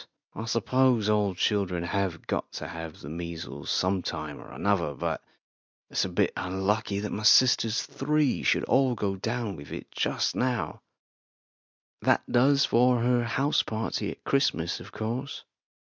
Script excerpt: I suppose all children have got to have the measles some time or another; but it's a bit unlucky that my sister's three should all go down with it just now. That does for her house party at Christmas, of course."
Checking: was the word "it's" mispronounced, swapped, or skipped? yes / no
no